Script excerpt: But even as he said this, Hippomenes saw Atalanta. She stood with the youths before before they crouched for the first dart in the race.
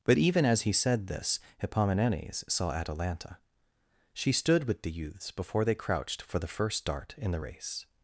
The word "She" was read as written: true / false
true